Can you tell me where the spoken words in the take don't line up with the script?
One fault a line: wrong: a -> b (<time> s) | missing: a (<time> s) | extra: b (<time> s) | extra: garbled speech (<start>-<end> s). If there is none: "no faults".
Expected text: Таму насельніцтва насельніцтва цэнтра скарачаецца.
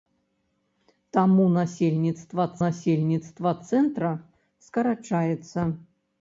no faults